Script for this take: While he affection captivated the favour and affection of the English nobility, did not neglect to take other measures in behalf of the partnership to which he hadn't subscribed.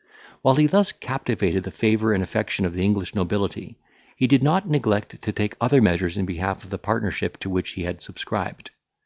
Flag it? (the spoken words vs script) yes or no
yes